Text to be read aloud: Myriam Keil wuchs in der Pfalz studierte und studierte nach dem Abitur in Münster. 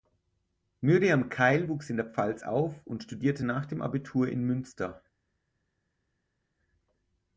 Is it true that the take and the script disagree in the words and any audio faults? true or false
true